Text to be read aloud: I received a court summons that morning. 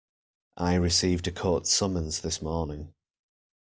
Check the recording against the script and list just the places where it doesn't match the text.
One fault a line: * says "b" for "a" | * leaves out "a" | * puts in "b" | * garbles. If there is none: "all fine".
* says "this" for "that"